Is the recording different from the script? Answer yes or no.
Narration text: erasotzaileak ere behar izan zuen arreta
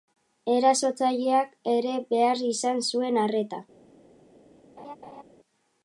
no